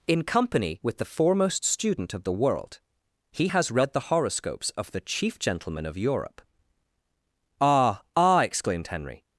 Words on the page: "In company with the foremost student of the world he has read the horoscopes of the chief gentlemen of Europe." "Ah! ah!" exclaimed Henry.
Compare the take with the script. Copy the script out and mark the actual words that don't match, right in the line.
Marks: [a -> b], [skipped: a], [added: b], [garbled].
"In company with the foremost student of the world he has read the horoscopes of the chief gentlemen of Europe." "Ah! ah!" exclaimed Henry.